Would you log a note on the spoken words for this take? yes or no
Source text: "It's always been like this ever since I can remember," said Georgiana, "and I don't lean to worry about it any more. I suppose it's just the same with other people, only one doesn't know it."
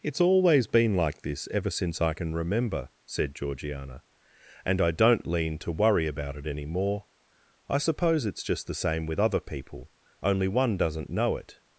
no